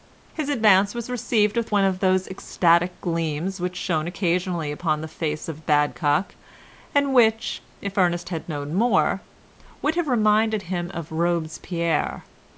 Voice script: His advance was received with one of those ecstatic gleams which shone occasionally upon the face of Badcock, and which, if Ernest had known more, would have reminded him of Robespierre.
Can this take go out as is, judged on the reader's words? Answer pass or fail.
pass